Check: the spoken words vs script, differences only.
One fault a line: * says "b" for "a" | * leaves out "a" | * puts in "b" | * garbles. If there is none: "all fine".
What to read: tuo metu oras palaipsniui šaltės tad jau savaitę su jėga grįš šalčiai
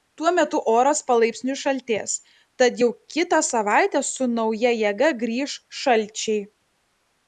* puts in "kitą"
* puts in "nauja"